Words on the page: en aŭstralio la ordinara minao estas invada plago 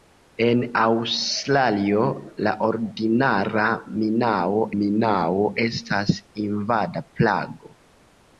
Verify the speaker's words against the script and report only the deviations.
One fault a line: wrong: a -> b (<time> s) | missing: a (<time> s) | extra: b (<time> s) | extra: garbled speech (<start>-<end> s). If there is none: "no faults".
extra: minao (4.8 s)